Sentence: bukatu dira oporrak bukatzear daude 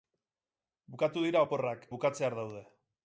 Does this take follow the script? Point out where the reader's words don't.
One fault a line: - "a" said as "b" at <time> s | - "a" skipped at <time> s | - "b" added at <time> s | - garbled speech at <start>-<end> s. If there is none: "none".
none